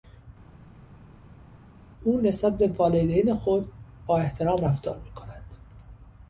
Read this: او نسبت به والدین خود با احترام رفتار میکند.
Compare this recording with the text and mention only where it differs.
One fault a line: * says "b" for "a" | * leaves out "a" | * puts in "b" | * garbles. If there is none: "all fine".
all fine